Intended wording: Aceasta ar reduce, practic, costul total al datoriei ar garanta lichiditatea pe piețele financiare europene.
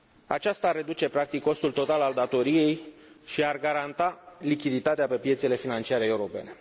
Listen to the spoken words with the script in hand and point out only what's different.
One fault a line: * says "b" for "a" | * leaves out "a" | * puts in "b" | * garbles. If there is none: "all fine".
* puts in "și"